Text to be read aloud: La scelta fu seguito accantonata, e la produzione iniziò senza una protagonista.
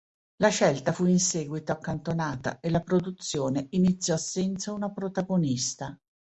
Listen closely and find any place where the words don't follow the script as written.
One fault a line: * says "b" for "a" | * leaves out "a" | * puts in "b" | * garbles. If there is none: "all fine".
* puts in "in"